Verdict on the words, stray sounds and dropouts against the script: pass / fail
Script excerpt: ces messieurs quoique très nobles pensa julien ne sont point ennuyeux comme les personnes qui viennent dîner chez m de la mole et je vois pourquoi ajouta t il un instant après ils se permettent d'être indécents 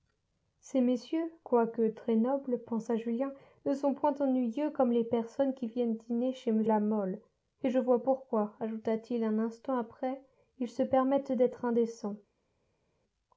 fail